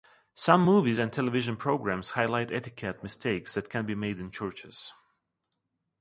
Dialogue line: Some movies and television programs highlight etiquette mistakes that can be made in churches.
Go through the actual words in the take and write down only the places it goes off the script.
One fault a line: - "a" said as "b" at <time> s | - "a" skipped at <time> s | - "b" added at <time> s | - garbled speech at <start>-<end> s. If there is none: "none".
none